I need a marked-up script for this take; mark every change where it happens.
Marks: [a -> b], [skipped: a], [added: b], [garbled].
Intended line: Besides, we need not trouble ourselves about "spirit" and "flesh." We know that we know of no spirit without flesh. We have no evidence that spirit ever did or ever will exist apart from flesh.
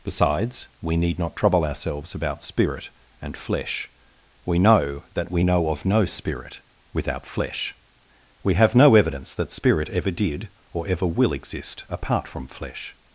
Besides, we need not trouble ourselves about "spirit" and "flesh." We know that we know of no spirit without flesh. We have no evidence that spirit ever did or ever will exist apart from flesh.